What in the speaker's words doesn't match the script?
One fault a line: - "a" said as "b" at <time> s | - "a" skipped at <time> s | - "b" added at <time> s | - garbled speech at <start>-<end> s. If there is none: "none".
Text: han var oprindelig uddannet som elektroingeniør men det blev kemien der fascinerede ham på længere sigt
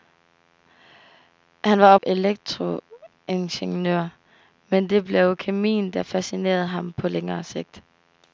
- "oprindelig uddannet som" skipped at 1.9 s